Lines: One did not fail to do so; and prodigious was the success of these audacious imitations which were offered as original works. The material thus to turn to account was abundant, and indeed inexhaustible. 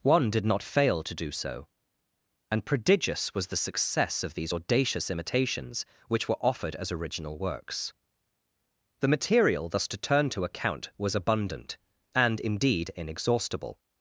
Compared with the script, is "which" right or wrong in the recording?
right